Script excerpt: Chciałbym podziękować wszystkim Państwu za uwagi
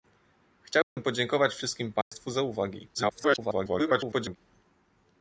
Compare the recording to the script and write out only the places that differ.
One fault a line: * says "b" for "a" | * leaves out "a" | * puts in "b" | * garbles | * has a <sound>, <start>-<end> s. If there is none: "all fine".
* has a dropout, 0.8-1.0 s
* has a dropout, 2.0-2.1 s
* garbles